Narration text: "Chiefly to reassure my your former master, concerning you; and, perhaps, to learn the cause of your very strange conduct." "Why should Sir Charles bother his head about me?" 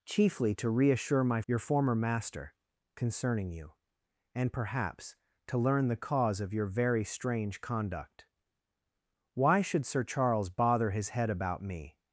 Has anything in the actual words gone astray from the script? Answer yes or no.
no